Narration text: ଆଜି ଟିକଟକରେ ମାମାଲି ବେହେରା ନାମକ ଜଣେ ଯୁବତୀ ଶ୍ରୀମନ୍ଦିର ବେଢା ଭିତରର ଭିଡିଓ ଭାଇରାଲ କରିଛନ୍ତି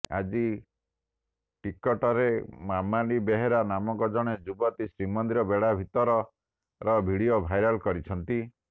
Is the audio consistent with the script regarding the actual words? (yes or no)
yes